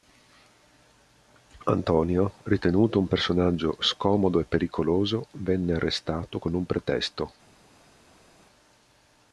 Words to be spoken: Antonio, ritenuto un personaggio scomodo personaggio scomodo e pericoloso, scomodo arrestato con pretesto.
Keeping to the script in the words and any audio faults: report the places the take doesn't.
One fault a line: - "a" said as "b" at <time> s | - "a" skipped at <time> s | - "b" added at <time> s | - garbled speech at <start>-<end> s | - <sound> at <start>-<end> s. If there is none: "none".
- "personaggio scomodo" skipped at 4.4 s
- "scomodo" said as "venne" at 5.3 s
- "un" added at 6.5 s